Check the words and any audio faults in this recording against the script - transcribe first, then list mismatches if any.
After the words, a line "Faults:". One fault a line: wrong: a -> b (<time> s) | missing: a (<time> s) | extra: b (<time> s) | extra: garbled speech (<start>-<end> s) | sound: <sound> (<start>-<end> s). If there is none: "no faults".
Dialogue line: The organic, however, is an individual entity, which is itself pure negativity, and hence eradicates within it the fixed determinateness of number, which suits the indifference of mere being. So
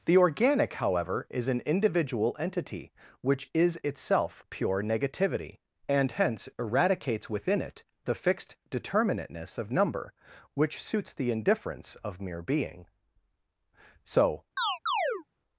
The organic, however, is an individual entity, which is itself pure negativity, and hence eradicates within it the fixed determinateness of number, which suits the indifference of mere being. So
Faults:
sound: chirp (14.6-15.2 s)